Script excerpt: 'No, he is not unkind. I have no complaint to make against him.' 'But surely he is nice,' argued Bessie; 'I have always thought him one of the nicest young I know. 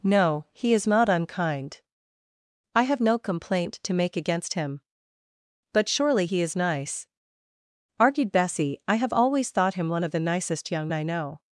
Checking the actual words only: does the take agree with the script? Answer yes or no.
yes